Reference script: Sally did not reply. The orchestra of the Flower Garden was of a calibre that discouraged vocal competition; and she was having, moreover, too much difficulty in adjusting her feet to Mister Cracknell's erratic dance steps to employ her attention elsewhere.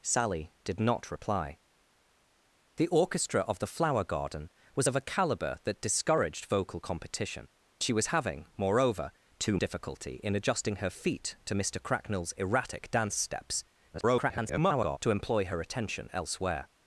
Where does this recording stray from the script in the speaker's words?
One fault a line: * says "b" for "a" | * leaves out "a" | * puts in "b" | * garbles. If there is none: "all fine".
* leaves out "and"
* leaves out "much"
* garbles